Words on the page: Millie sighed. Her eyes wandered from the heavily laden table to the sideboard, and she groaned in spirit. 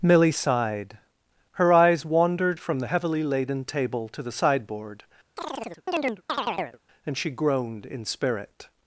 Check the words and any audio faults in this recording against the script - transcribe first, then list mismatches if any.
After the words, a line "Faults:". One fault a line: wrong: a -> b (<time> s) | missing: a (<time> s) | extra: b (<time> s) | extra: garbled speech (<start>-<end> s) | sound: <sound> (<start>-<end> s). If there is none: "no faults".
Millie sighed. Her eyes wandered from the heavily laden table to the sideboard, and she groaned in spirit.
Faults:
sound: chirp (5.4-6.8 s)